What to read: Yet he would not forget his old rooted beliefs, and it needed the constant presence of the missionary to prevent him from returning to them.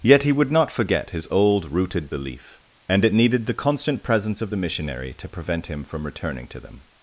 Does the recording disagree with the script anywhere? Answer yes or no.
yes